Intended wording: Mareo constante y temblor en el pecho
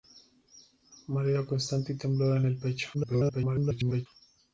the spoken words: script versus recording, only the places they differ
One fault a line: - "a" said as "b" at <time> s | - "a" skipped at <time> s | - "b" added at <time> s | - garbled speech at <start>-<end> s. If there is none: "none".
- garbled speech at 2.9-4.1 s